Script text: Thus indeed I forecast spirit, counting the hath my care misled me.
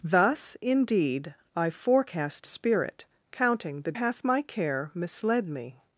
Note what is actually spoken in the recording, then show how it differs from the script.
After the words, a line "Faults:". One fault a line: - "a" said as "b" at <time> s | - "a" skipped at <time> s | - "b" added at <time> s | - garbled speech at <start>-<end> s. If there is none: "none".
Thus indeed I forecast spirit, counting the hath my care misled me.
Faults:
none